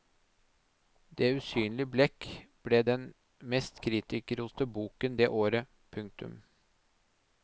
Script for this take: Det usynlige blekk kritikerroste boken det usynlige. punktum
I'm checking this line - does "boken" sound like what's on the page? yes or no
yes